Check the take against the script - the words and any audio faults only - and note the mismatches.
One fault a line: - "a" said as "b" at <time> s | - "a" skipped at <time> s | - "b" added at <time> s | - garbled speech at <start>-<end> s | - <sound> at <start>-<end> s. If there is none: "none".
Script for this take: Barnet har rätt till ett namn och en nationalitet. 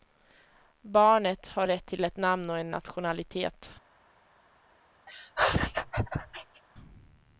- laugh at 5.1-6.6 s